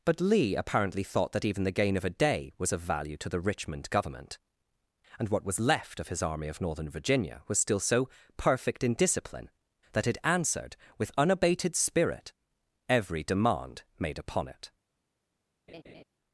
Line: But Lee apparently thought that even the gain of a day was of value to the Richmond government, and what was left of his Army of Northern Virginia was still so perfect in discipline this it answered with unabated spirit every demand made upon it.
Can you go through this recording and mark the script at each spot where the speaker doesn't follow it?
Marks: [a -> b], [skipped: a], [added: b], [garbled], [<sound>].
But Lee apparently thought that even the gain of a day was of value to the Richmond government, and what was left of his Army of Northern Virginia was still so perfect in discipline [this -> that] it answered with unabated spirit every demand made upon it. [laugh]